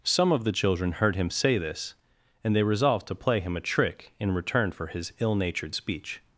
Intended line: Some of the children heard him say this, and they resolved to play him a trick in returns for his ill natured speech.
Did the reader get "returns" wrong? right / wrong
wrong